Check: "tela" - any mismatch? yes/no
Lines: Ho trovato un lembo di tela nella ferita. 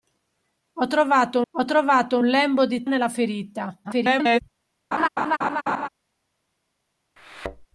yes